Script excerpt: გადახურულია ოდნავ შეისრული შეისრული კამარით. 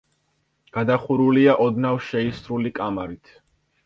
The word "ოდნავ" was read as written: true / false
true